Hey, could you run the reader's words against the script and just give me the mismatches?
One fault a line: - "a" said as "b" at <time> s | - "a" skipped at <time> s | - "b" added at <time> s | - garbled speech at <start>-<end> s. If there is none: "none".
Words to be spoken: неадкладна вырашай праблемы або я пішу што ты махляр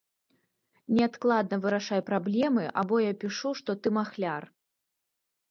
none